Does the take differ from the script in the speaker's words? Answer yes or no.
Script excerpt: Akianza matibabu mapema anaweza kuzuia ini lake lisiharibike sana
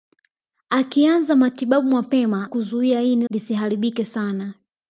yes